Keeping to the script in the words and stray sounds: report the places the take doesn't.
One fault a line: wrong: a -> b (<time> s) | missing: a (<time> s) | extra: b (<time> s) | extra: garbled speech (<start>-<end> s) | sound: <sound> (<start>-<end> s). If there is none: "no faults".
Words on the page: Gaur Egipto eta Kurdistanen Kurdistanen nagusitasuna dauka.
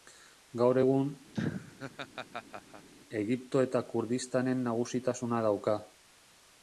extra: egun (0.8 s)
sound: laugh (1.3-2.9 s)
missing: Kurdistanen (4.7 s)